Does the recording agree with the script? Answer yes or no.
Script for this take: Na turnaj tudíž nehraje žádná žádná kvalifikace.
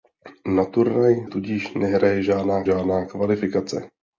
yes